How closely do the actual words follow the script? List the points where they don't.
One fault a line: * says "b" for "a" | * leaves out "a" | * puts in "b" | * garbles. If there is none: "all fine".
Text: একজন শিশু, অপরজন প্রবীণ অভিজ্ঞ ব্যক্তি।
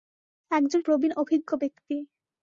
* leaves out "শিশু অপরজন"